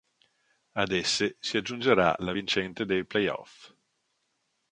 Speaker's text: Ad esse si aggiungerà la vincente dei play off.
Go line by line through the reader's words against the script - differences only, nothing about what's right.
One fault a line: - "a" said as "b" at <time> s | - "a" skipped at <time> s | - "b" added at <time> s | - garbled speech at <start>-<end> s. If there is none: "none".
none